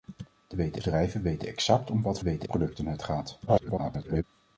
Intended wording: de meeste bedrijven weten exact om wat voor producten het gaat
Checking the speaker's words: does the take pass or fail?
fail